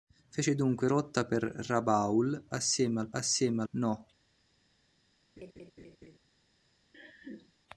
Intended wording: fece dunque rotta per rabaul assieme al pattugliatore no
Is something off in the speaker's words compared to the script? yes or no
yes